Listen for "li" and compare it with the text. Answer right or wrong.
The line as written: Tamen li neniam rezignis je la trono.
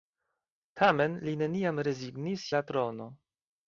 right